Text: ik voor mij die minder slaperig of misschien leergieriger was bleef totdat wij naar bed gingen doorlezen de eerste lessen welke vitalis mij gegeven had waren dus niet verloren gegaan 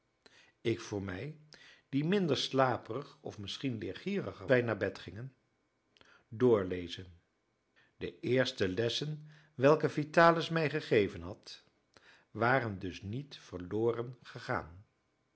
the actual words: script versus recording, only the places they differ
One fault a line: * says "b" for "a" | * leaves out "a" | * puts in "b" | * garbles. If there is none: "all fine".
* leaves out "was bleef totdat"